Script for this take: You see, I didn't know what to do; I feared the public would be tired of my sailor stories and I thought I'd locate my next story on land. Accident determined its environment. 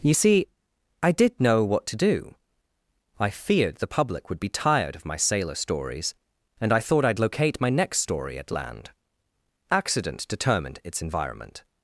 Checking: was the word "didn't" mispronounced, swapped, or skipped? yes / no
yes